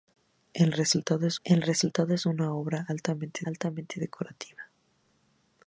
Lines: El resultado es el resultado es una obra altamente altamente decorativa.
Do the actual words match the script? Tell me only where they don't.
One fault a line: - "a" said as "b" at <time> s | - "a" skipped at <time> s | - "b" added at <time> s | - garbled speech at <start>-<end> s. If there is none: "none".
none